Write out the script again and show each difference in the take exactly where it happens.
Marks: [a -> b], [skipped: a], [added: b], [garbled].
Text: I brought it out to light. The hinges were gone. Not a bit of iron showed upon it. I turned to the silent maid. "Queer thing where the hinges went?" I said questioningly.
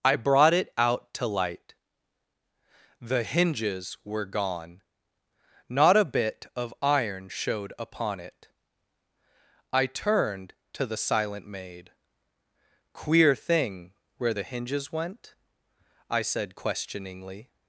I brought it out to light. The hinges were gone. Not a bit of iron showed upon it. I turned to the silent maid. "Queer thing where the hinges went?" I said questioningly.